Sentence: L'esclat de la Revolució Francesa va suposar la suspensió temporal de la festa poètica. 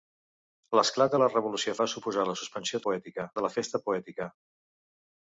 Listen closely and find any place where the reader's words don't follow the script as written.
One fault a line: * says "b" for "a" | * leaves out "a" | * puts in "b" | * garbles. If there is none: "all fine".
* leaves out "Francesa"
* says "poètica" for "temporal"